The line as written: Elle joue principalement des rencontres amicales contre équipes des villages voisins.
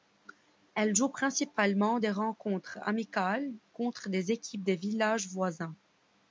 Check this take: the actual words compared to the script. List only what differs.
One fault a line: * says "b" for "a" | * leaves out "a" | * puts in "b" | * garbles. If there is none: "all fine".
* puts in "des"